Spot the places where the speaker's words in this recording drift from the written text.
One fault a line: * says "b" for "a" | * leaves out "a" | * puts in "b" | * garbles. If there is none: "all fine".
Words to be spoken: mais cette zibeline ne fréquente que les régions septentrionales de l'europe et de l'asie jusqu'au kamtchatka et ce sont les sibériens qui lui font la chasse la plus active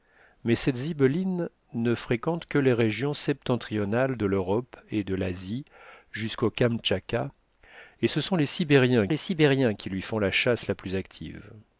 * puts in "les sibériens"